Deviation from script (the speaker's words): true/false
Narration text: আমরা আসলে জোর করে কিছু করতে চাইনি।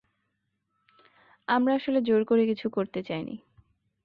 false